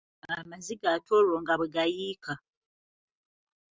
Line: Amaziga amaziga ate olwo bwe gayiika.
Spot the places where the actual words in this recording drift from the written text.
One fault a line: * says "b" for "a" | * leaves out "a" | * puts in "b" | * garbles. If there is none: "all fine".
* leaves out "amaziga"
* puts in "nga"